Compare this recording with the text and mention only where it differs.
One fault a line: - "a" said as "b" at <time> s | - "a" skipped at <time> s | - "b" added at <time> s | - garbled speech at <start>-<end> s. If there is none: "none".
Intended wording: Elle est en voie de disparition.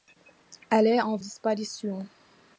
- "voie de" skipped at 1.2 s